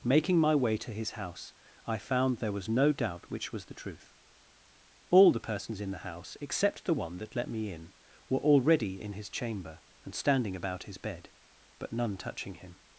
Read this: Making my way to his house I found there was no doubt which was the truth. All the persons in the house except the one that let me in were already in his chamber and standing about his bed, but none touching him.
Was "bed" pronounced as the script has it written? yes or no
yes